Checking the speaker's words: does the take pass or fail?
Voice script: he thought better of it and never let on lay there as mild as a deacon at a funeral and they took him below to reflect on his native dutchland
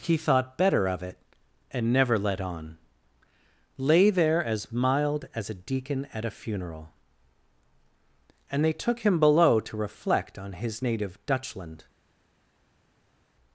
pass